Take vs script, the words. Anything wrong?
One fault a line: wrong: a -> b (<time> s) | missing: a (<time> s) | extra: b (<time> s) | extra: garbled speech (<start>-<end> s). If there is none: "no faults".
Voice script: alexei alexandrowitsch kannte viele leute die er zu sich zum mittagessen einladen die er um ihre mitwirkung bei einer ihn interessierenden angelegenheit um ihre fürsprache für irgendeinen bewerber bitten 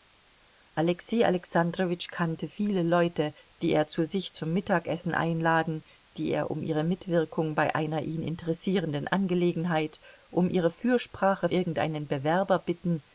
missing: für (11.5 s)